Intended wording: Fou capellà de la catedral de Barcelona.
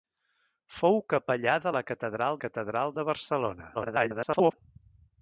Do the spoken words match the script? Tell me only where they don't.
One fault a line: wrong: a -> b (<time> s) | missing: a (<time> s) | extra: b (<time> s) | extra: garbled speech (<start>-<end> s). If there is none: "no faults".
extra: catedral (2.4 s)
extra: garbled speech (3.7-4.5 s)